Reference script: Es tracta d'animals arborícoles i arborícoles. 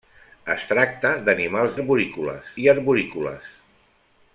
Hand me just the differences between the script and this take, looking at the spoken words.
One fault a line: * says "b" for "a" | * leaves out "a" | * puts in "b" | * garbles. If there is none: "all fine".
all fine